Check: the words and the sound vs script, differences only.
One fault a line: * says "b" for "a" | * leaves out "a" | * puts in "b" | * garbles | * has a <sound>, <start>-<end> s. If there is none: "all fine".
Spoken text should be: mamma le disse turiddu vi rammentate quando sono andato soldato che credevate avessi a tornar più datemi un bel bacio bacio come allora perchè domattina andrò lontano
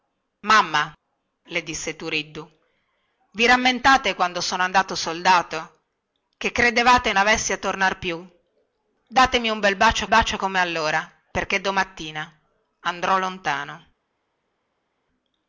all fine